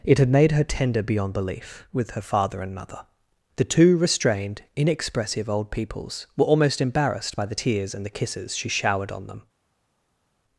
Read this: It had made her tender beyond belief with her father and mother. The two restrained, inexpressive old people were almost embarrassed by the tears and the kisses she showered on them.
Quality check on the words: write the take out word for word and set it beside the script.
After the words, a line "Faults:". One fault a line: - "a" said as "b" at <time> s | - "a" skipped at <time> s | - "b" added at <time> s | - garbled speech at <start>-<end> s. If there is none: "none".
It had made her tender beyond belief with her father and mother. The two restrained, inexpressive old peoples were almost embarrassed by the tears and the kisses she showered on them.
Faults:
- "people" said as "peoples" at 5.7 s